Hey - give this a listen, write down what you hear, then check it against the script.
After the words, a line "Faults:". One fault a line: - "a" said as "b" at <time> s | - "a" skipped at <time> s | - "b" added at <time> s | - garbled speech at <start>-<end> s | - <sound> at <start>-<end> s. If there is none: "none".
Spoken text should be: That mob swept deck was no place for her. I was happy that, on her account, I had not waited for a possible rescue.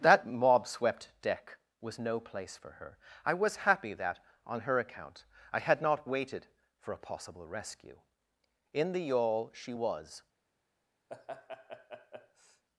That mob swept deck was no place for her. I was happy that, on her account, I had not waited for a possible rescue. In the yawl she was
Faults:
- "In the yawl she was" added at 8.7 s
- laugh at 11.1-12.6 s